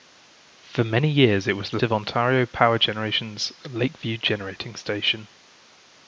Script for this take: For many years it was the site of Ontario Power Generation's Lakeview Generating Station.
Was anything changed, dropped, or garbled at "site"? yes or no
yes